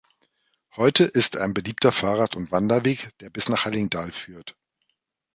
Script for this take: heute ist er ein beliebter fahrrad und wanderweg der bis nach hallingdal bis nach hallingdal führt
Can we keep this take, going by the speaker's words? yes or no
no